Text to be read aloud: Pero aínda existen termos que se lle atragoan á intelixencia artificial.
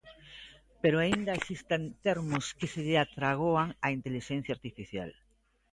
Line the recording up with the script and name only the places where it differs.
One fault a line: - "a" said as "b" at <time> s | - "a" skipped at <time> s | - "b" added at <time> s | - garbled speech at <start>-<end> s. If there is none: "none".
none